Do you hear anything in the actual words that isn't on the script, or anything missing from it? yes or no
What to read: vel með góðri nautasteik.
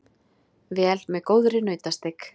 no